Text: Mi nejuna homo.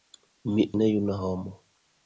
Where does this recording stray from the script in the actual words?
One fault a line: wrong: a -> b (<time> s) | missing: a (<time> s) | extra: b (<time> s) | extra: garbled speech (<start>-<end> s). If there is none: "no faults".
no faults